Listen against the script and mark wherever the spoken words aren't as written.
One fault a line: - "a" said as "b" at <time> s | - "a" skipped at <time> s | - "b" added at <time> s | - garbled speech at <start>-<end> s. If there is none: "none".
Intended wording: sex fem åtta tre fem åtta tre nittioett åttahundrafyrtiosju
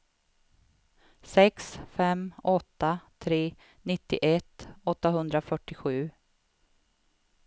- "fem åtta tre" skipped at 3.5 s